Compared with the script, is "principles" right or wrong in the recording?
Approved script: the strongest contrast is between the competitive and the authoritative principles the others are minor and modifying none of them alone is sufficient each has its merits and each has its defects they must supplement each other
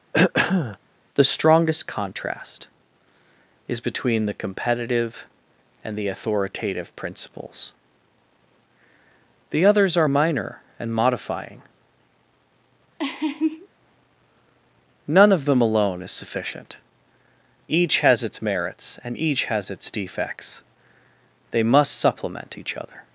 right